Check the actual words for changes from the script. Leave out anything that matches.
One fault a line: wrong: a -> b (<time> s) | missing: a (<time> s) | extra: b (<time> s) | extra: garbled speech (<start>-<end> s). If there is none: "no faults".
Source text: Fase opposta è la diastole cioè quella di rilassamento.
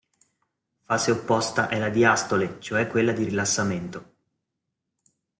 no faults